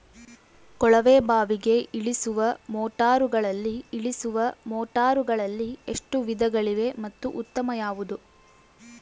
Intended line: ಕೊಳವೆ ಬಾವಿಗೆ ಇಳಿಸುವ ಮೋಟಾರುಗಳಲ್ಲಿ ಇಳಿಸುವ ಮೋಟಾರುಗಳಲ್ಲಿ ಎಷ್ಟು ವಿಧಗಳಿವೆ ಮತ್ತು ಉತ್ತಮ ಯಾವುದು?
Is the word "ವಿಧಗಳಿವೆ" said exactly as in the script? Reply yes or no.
yes